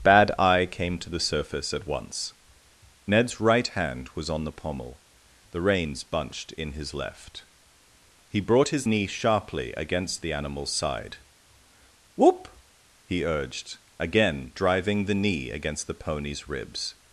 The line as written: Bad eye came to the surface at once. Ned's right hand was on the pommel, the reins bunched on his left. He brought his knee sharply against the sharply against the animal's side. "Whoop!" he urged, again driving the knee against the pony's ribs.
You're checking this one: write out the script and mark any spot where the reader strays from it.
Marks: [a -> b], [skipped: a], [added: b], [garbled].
Bad eye came to the surface at once. Ned's right hand was on the pommel, the reins bunched [on -> in] his left. He brought his knee sharply against the [skipped: sharply against the] animal's side. "Whoop!" he urged, again driving the knee against the pony's ribs.